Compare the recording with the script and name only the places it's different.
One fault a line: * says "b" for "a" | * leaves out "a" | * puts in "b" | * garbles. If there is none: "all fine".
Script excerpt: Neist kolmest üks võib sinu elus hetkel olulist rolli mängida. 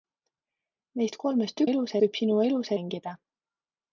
* says "elus" for "üks"
* leaves out "hetkel olulist rolli"